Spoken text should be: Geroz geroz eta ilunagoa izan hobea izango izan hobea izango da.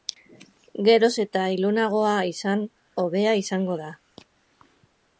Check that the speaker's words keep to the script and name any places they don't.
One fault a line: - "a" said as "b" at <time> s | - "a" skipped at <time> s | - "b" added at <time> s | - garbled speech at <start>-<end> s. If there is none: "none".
- "geroz" skipped at 1.1 s
- "izan hobea izango" skipped at 3.8 s